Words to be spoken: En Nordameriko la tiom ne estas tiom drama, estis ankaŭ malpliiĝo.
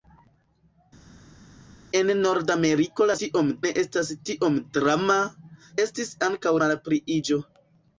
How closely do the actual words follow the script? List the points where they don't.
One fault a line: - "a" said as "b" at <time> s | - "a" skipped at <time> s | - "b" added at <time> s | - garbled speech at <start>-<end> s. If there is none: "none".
none